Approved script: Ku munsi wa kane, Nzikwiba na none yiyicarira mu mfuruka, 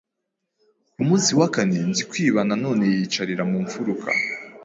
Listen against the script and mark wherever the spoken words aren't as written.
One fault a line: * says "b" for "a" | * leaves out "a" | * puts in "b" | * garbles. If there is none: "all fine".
all fine